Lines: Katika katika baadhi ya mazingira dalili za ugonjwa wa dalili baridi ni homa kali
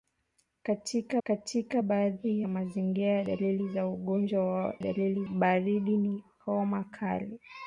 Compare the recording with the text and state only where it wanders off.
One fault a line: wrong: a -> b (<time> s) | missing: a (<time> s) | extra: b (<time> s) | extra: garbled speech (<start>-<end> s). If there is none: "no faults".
no faults